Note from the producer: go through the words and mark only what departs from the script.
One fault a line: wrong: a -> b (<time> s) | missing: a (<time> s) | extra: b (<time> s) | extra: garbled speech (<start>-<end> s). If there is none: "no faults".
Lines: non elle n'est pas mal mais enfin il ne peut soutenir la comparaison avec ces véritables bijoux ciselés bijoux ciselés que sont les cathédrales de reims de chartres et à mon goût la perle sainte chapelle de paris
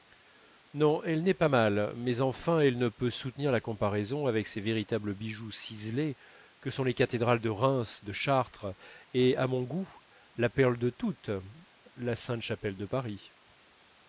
wrong: il -> elle (2.6 s)
missing: bijoux ciselés (6.2 s)
extra: de toutes la (10.8 s)